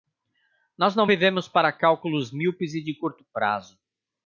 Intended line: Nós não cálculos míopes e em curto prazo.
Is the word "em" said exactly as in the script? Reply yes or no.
no